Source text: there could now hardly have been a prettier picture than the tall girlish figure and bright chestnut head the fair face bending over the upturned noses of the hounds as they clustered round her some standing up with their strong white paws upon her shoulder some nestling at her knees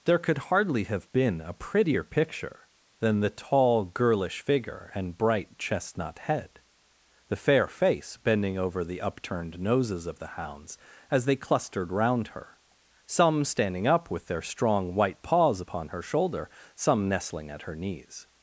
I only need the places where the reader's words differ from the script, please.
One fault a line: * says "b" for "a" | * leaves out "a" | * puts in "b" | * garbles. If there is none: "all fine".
* leaves out "now"